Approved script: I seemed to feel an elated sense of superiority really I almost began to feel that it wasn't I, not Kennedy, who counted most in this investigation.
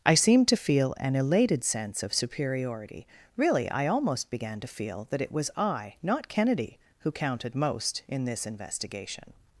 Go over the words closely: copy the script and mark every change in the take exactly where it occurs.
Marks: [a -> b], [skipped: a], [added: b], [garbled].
I seemed to feel an elated sense of superiority really I almost began to feel that it [wasn't -> was] I, not Kennedy, who counted most in this investigation.